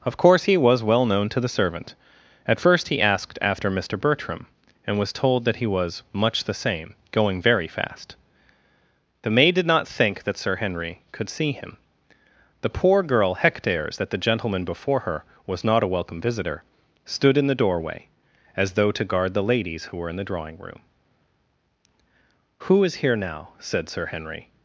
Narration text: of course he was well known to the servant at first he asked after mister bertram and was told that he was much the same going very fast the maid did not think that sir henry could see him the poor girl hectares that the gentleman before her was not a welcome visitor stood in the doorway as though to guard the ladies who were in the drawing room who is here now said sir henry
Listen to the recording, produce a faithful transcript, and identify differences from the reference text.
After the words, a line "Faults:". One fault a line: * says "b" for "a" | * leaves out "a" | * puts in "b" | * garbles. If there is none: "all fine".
of course he was well known to the servant at first he asked after mister bertram and was told that he was much the same going very fast the maid did not think that sir henry could see him the poor girl hectares that the gentleman before her was not a welcome visitor stood in the doorway as though to guard the ladies who were in the drawing room who is here now said sir henry
Faults:
all fine